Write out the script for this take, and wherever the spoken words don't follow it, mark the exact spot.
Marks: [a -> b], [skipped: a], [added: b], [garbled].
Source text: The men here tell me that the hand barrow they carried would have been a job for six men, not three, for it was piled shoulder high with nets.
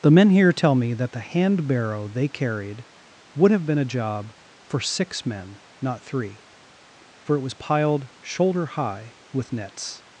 The men here tell me that the hand barrow they carried would have been a job for six men, not three, for it was piled shoulder high with nets.